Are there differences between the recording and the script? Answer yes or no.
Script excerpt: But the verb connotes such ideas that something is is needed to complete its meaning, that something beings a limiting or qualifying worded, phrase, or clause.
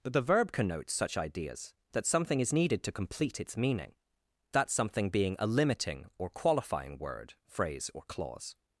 yes